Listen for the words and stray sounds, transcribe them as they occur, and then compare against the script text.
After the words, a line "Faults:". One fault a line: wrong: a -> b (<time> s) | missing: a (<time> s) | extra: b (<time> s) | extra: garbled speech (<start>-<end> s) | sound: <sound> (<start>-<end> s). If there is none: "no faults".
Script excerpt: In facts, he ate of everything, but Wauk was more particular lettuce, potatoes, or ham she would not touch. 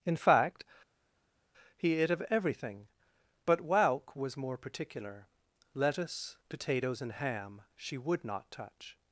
In fact, he ate of everything, but Wauk was more particular lettuce, potatoes, and ham she would not touch.
Faults:
wrong: facts -> fact (0.1 s)
wrong: or -> and (7.0 s)